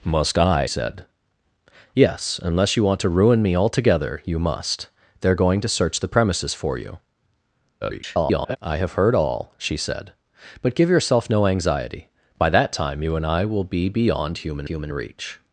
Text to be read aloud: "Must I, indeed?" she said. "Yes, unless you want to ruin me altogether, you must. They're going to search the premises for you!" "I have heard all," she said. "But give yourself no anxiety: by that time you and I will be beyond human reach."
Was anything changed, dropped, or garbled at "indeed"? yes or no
yes